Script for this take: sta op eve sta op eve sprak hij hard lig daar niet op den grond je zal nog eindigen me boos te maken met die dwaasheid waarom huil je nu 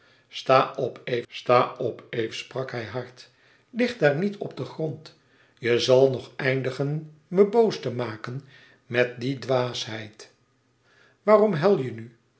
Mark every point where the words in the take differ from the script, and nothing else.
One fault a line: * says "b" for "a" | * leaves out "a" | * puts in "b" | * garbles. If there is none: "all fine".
all fine